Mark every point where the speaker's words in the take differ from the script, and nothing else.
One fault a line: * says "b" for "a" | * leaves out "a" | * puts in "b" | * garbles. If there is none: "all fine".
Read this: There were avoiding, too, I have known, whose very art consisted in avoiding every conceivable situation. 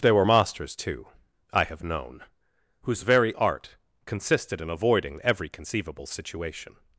* says "masters" for "avoiding"